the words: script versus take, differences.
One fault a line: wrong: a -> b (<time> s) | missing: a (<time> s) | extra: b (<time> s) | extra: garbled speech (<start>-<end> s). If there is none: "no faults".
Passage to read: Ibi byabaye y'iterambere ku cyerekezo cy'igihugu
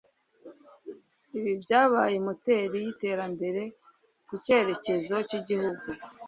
extra: moteri (2.2 s)